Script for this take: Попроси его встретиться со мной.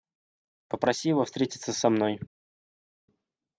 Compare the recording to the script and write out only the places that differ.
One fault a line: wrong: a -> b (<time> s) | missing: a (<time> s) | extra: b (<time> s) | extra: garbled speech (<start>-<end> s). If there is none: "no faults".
no faults